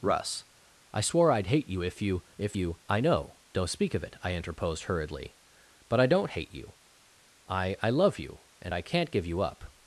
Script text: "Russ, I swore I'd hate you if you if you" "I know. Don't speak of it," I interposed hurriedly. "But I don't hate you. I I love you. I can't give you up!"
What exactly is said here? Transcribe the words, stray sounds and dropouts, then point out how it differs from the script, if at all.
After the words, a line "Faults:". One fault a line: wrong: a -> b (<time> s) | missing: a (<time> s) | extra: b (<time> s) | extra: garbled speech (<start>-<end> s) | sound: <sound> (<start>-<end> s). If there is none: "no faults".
"Russ, I swore I'd hate you if you if you" "I know. Don't speak of it," I interposed hurriedly. "But I don't hate you. I I love you. And I can't give you up!"
Faults:
extra: And (8.6 s)